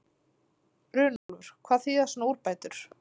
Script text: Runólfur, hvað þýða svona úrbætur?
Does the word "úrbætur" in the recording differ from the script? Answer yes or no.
no